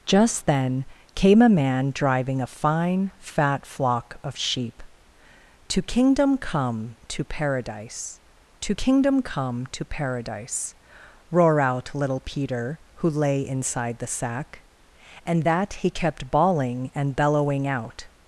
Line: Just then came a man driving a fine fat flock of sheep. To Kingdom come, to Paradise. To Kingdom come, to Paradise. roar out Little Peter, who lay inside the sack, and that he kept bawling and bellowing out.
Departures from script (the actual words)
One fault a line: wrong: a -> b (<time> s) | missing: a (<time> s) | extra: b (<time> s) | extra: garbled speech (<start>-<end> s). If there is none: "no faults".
no faults